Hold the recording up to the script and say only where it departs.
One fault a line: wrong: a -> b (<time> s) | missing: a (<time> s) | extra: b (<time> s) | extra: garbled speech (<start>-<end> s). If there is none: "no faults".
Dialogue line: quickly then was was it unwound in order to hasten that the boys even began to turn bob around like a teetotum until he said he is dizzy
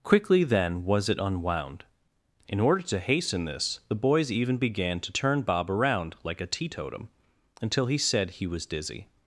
missing: was (1.1 s)
wrong: that -> this (3.5 s)
wrong: is -> was (8.5 s)